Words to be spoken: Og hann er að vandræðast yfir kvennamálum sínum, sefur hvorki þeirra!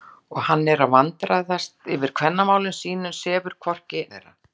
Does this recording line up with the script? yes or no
yes